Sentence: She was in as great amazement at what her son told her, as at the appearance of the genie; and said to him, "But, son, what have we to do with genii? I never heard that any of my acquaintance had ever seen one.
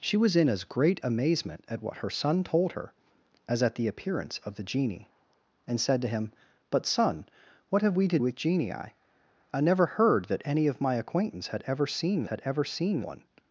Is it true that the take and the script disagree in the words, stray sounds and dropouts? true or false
true